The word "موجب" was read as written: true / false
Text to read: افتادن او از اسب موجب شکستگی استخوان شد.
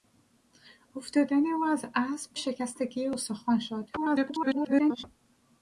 false